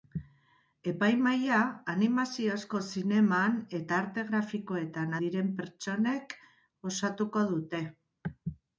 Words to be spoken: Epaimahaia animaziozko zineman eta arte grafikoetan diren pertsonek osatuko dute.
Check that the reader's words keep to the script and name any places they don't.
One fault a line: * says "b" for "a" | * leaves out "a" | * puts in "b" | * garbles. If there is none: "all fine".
all fine